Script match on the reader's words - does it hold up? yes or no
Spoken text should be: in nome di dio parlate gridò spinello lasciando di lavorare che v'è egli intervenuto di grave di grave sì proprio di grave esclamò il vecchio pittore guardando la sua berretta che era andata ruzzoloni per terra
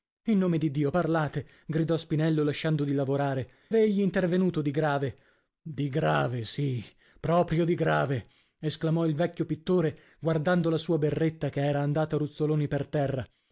no